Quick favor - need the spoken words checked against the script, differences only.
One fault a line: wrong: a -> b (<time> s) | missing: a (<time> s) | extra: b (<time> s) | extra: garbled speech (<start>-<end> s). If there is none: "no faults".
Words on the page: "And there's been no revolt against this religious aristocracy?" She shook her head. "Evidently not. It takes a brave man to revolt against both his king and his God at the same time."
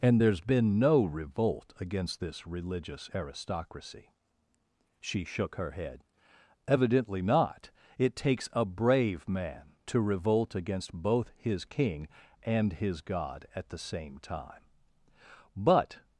extra: But (15.6 s)